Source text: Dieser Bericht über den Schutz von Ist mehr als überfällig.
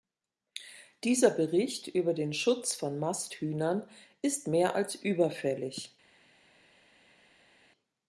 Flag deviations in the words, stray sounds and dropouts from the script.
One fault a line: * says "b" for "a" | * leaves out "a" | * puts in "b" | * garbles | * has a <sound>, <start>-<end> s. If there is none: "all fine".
* puts in "Masthühnern"